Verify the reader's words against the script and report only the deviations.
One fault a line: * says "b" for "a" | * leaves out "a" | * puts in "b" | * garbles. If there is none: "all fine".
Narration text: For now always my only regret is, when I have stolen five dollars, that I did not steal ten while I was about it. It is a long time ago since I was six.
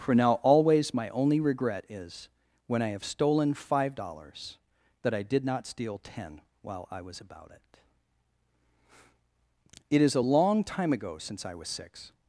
all fine